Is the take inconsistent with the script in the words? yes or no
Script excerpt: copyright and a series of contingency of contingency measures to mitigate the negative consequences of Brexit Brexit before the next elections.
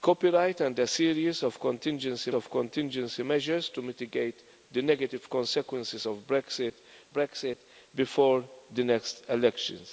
no